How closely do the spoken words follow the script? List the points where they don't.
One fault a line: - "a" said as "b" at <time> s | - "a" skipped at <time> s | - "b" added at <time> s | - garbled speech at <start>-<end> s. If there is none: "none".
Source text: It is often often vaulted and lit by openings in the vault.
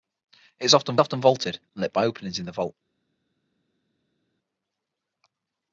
none